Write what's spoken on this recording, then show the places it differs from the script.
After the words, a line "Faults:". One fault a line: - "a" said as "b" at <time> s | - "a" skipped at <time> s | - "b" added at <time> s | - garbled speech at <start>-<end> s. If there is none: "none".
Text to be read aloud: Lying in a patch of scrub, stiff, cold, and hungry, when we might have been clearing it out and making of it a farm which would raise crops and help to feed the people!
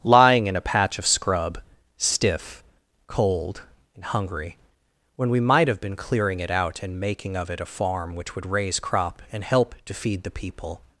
Lying in a patch of scrub, stiff, cold, and hungry, when we might have been clearing it out and making of it a farm which would raise crop and help to feed the people!
Faults:
- "crops" said as "crop" at 8.8 s